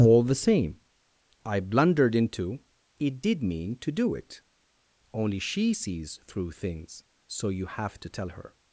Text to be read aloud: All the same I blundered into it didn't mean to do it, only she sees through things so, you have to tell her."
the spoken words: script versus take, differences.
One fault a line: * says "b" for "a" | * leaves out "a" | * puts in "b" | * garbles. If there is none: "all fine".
* says "did" for "didn't"